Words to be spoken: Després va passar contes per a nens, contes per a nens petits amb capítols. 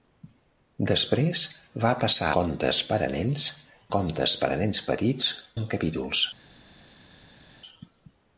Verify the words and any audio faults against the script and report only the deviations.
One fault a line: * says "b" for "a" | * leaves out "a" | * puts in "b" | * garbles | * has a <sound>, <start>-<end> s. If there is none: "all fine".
all fine